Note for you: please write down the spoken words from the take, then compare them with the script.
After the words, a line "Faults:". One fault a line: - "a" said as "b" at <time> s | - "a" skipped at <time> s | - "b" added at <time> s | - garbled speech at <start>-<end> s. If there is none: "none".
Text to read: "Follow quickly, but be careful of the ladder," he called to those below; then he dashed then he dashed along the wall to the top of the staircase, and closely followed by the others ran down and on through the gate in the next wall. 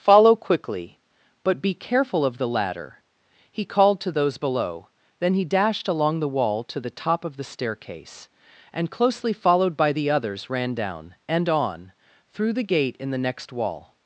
"Follow quickly, but be careful of the ladder," he called to those below; then he dashed along the wall to the top of the staircase, and closely followed by the others ran down and on through the gate in the next wall.
Faults:
- "then he dashed" skipped at 5.9 s